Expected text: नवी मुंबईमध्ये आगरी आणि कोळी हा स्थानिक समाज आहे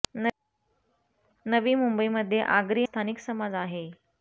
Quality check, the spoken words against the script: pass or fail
fail